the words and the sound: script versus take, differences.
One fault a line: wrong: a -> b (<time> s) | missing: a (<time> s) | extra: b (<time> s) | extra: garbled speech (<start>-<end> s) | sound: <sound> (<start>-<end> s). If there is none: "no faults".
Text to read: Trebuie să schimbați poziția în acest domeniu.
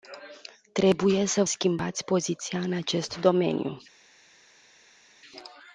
no faults